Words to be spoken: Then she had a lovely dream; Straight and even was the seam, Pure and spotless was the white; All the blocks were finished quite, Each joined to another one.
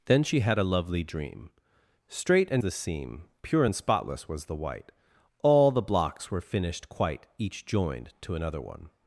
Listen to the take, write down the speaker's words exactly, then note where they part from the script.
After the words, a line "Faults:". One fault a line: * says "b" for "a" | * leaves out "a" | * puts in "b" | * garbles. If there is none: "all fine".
Then she had a lovely dream; Straight and the seam, Pure and spotless was the white; All the blocks were finished quite, Each joined to another one.
Faults:
* leaves out "even was"